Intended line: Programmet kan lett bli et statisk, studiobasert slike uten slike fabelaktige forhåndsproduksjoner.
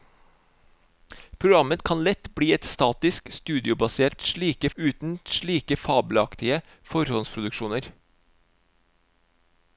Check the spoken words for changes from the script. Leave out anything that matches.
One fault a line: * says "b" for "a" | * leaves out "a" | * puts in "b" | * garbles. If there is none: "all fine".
all fine